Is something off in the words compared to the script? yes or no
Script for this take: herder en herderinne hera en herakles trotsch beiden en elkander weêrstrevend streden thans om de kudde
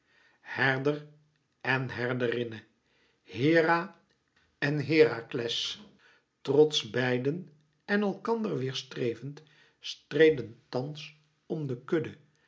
no